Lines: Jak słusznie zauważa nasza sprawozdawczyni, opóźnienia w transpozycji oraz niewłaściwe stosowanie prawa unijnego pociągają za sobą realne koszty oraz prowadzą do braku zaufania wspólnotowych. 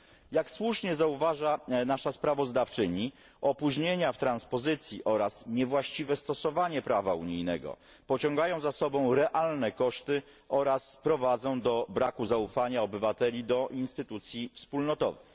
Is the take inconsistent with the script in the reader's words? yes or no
yes